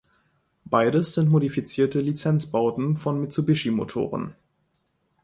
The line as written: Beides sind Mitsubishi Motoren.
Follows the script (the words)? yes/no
no